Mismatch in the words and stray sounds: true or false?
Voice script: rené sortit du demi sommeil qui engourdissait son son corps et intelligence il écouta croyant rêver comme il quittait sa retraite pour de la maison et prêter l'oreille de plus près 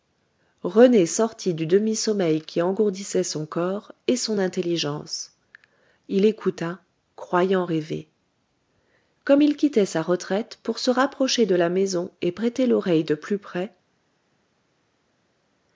true